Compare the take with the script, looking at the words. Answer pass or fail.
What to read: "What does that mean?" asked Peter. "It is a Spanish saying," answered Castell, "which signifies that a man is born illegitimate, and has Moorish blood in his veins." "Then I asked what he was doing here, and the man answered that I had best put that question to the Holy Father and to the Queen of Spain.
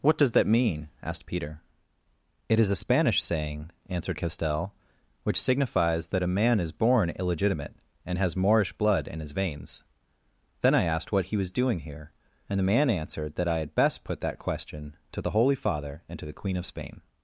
pass